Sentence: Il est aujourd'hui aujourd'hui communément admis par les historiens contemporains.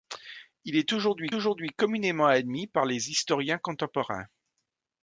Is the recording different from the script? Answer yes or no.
no